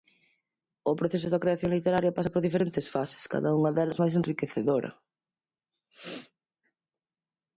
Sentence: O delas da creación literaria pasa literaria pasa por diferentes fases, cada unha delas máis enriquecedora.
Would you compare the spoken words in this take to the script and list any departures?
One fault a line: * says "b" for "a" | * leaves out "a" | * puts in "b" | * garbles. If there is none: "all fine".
* says "proceso" for "delas"
* leaves out "literaria pasa"